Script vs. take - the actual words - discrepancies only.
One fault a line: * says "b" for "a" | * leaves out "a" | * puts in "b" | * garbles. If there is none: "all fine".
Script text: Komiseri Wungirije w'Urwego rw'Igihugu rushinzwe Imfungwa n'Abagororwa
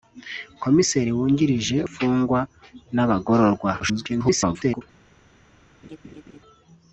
* leaves out "w'Urwego rw'Igihugu rushinzwe"
* garbles